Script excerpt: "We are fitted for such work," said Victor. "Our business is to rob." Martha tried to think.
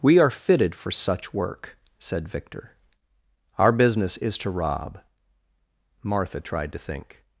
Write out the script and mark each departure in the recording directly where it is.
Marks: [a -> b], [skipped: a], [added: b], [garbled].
"We are fitted for such work," said Victor. "Our business is to rob." Martha tried to think.